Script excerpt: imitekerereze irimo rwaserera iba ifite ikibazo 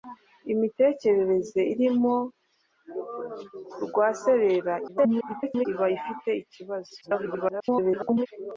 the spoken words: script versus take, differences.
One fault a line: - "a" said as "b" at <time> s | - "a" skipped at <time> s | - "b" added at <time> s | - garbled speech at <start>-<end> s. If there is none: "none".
- garbled speech at 4.9-5.7 s
- garbled speech at 7.0-8.3 s